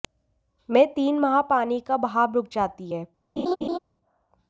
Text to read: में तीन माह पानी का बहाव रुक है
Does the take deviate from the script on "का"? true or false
false